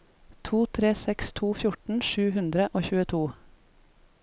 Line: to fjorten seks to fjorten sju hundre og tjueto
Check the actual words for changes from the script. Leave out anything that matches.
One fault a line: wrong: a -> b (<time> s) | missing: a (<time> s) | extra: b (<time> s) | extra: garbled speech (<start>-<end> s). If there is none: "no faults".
wrong: fjorten -> tre (0.8 s)